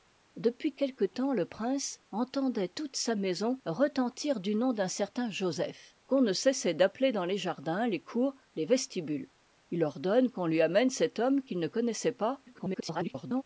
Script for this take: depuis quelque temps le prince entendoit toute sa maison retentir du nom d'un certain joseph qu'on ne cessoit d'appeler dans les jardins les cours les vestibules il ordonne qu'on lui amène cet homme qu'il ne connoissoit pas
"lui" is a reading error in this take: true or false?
false